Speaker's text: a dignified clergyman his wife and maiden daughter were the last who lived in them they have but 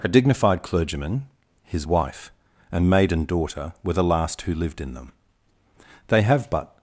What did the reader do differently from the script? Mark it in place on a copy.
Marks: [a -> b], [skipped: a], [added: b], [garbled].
a dignified clergyman his wife and maiden daughter were the last who lived in them they have but